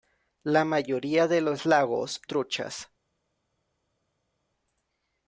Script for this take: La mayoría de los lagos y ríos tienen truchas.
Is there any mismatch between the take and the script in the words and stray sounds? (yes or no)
yes